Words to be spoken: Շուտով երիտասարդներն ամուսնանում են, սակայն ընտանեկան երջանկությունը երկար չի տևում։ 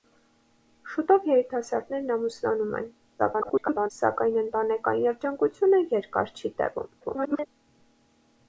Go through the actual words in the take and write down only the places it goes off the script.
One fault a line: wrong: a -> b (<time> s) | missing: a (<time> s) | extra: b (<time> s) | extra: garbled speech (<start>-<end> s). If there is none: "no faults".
extra: garbled speech (3.2-3.9 s)
extra: garbled speech (7.0-7.5 s)